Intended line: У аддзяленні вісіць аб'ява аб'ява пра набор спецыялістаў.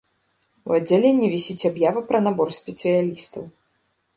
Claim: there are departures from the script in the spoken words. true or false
true